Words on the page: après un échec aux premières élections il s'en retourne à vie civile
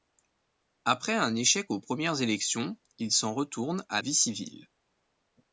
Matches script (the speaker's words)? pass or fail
pass